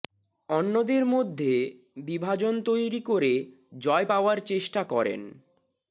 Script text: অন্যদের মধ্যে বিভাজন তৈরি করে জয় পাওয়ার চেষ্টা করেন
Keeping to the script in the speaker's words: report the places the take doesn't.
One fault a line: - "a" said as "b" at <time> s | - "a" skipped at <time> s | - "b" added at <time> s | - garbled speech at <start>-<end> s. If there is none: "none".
none